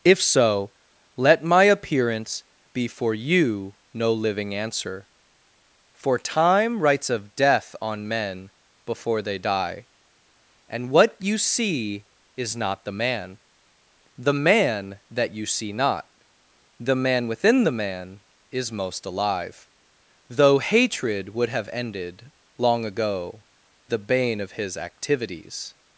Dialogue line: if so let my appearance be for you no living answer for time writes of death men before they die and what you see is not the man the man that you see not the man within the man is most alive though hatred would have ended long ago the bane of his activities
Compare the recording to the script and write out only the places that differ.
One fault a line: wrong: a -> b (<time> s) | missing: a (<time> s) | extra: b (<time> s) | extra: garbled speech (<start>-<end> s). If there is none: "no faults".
extra: on (7.8 s)